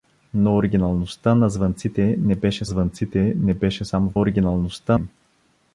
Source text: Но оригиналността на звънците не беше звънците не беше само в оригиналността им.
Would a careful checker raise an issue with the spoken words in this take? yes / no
no